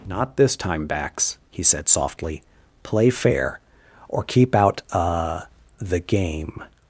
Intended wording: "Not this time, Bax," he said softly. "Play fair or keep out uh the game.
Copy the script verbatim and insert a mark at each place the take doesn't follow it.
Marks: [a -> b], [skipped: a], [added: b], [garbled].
"Not this time, Bax," he said softly. "Play fair or keep out uh the game.